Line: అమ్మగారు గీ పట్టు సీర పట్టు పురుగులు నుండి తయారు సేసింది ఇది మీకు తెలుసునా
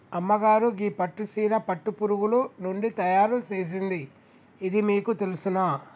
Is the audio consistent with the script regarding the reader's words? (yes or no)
yes